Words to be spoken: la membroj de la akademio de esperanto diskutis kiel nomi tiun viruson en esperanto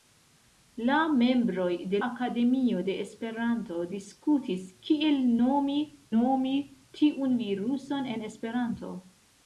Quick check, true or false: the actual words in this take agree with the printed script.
false